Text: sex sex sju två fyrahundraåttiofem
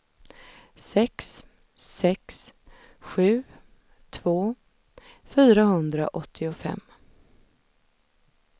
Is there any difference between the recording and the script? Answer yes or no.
no